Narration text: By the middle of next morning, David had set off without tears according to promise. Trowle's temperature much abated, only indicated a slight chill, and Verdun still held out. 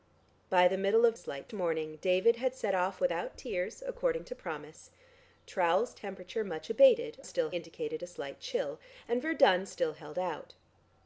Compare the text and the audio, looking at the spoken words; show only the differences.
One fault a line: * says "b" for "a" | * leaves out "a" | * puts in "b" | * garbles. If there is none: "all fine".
* says "slight" for "next"
* says "still" for "only"